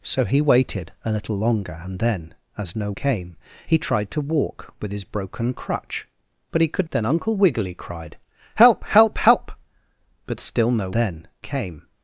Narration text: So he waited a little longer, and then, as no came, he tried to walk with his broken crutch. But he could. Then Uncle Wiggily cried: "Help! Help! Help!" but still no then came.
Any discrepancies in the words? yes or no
no